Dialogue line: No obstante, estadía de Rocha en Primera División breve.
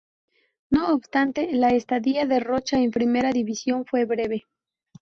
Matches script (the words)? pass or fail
fail